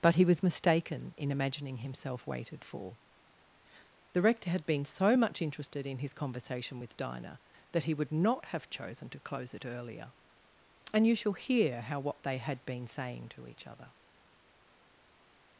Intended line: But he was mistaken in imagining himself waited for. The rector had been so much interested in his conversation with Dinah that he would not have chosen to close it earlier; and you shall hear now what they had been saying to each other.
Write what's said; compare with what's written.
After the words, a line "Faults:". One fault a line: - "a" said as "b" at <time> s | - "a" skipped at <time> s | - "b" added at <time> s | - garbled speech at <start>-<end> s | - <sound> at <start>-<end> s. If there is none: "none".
But he was mistaken in imagining himself waited for. The rector had been so much interested in his conversation with Dinah that he would not have chosen to close it earlier; and you shall hear how what they had been saying to each other.
Faults:
- "now" said as "how" at 11.8 s